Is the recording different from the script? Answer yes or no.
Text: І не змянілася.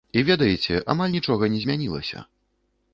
yes